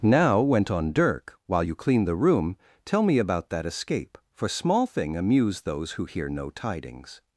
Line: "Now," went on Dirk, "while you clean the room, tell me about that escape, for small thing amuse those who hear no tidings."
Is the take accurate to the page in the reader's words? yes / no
yes